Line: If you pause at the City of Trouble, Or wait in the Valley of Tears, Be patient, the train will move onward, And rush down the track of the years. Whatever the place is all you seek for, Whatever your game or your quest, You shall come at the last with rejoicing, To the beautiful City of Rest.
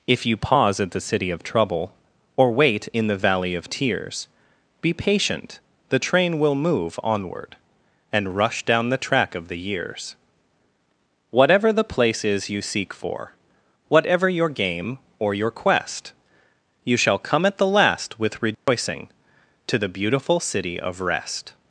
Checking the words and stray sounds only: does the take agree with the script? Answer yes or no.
no